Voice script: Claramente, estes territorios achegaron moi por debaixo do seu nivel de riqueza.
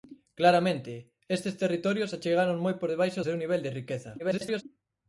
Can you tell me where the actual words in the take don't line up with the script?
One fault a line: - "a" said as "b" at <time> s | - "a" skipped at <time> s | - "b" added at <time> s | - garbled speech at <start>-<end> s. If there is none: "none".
- "do" skipped at 3.2 s
- garbled speech at 4.2-4.6 s